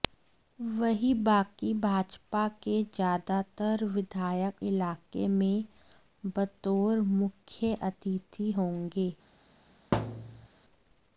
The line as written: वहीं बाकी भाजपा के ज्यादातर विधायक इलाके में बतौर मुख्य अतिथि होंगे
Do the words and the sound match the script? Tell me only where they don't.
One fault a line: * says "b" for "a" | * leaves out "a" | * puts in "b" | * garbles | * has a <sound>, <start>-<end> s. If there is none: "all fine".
* has a thud, 9.9-10.5 s